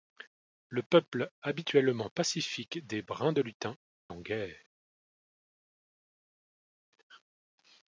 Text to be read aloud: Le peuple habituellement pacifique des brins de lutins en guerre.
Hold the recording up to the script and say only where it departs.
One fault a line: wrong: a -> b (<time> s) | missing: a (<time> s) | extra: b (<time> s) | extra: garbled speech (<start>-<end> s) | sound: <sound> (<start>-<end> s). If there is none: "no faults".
no faults